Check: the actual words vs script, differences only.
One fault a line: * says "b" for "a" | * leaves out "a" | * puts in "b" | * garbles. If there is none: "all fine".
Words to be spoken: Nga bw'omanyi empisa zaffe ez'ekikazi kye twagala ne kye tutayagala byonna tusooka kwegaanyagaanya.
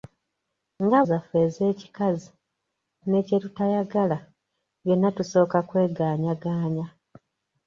* leaves out "bw'omanyi empisa"
* leaves out "kye twagala"